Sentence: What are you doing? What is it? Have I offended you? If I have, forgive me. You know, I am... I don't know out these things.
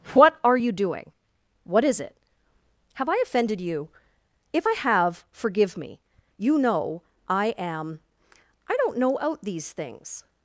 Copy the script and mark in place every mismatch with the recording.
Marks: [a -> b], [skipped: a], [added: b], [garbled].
What are you doing? What is it? Have I offended you? If I have, forgive me. You know, I am... I don't know out these things.